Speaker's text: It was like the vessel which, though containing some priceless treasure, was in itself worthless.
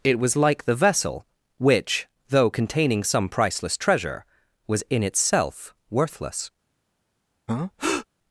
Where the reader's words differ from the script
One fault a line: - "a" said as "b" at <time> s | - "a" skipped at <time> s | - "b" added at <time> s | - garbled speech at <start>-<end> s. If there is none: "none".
none